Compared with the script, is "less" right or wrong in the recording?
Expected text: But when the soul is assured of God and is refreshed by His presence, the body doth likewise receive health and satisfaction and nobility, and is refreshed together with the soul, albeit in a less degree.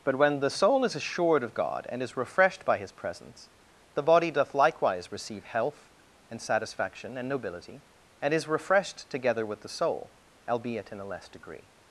right